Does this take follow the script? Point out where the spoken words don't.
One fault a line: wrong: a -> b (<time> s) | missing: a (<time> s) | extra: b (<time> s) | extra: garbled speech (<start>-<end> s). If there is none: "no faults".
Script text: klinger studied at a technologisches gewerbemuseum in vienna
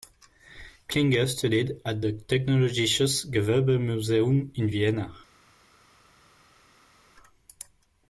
wrong: a -> the (2.0 s)